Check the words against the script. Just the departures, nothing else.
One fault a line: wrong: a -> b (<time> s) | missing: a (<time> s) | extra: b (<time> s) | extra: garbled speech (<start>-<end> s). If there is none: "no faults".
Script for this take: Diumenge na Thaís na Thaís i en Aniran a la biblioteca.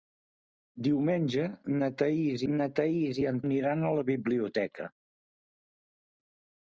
no faults